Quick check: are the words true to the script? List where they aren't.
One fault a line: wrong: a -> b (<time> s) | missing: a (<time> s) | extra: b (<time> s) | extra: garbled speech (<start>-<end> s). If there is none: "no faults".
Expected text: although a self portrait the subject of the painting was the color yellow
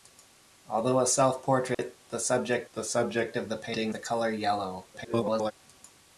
extra: the subject (2.7 s)
missing: was (4.0 s)
extra: garbled speech (4.9-5.5 s)